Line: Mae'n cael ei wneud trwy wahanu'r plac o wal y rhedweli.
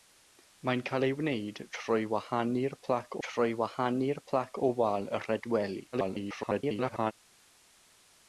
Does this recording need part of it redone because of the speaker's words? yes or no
yes